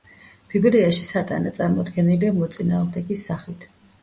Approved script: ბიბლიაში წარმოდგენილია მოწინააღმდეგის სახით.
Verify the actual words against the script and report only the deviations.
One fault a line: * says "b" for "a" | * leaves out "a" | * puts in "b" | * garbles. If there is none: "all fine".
* puts in "სატანა"